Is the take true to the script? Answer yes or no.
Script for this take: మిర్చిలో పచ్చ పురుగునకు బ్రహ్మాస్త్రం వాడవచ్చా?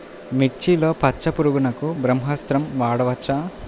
yes